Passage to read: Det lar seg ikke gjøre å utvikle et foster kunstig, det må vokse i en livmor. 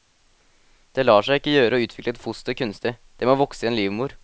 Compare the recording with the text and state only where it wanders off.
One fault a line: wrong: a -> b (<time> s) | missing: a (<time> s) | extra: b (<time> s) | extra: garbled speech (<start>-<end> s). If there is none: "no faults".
no faults